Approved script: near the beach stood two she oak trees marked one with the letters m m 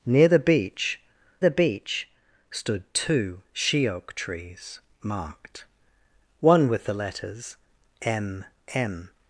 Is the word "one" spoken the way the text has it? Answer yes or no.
yes